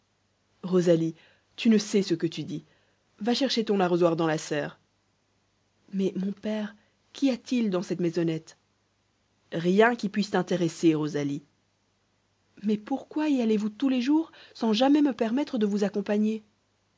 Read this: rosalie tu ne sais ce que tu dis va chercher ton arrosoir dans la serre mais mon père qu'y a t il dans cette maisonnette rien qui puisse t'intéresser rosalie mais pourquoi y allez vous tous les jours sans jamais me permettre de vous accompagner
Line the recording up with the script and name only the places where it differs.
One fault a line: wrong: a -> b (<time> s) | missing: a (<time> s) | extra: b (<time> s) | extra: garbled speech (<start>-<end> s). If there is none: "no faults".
no faults